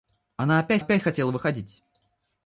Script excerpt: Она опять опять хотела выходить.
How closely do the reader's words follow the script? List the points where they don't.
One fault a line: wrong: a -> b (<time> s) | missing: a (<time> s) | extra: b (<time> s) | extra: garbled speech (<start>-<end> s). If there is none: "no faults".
no faults